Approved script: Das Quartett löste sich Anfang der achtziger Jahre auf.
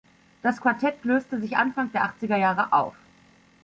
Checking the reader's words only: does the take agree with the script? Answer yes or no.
yes